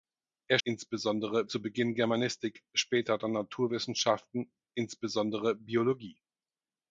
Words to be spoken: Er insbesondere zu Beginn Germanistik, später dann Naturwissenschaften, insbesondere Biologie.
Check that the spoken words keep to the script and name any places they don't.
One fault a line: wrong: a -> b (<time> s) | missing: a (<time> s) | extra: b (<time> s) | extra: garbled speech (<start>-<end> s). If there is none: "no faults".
no faults